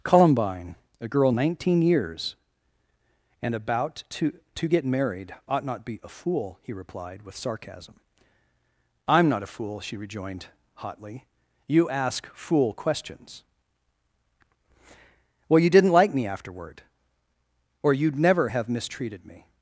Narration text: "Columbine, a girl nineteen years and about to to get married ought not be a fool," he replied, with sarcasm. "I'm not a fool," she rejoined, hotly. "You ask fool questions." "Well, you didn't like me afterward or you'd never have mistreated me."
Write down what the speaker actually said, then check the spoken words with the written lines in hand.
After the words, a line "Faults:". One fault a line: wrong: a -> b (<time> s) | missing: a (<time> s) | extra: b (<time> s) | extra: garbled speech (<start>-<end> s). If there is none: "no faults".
"Columbine, a girl nineteen years and about to to get married ought not be a fool," he replied, with sarcasm. "I'm not a fool," she rejoined, hotly. "You ask fool questions." "Well, you didn't like me afterward or you'd never have mistreated me."
Faults:
no faults